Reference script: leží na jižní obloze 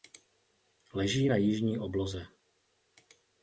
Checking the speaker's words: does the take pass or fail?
pass